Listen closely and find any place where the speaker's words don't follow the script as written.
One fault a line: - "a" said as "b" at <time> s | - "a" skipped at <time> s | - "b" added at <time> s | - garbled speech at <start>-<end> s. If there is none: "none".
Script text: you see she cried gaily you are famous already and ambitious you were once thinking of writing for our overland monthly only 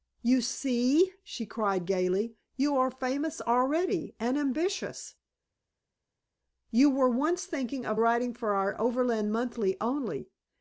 none